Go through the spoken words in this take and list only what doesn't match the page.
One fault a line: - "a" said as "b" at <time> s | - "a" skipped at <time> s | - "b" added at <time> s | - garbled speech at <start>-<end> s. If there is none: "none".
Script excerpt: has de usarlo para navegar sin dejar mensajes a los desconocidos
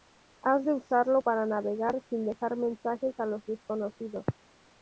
none